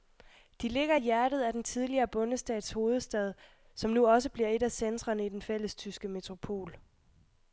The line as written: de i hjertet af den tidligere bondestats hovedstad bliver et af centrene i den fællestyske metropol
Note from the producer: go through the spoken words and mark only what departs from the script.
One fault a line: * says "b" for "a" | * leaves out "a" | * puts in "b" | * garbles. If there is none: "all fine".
* puts in "ligger"
* puts in "som nu også"